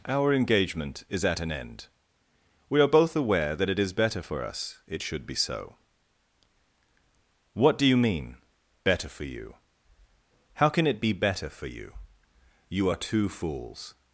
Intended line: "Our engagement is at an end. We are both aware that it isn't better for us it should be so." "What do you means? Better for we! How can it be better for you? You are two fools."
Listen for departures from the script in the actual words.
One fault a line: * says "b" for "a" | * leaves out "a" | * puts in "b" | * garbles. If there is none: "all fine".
* says "is" for "isn't"
* says "mean" for "means"
* says "you" for "we"